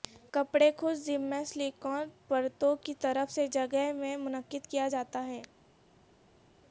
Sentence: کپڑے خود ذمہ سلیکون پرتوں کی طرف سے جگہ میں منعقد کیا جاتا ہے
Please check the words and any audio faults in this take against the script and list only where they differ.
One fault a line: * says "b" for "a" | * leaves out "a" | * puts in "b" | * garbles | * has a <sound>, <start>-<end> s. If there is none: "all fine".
all fine